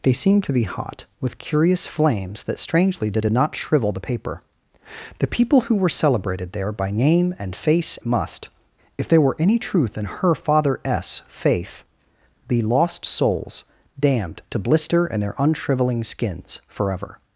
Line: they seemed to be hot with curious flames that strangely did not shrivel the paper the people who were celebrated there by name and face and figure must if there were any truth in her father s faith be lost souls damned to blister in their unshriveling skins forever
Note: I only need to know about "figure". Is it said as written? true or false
false